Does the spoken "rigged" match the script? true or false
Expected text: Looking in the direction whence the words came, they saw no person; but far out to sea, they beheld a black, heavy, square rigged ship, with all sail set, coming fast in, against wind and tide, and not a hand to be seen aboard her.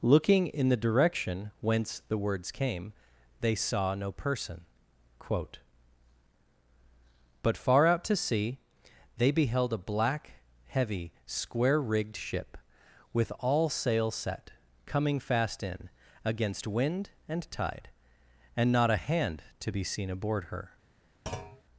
true